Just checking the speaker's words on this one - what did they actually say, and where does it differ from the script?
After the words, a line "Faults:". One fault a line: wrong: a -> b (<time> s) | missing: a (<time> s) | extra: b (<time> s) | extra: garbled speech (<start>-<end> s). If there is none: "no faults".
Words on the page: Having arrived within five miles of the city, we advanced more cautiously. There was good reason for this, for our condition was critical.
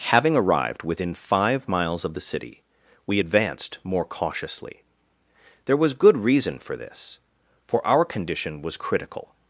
Having arrived within five miles of the city, we advanced more cautiously. There was good reason for this, for our condition was critical.
Faults:
no faults